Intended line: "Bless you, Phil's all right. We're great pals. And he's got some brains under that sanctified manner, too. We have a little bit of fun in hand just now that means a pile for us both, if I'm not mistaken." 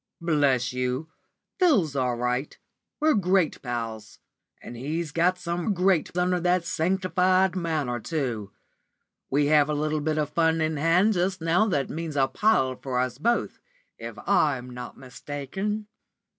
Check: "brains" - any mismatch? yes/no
yes